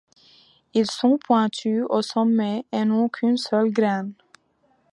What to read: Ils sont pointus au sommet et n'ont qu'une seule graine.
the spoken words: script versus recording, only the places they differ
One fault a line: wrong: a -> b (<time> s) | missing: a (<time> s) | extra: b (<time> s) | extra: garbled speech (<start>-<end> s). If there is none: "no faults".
no faults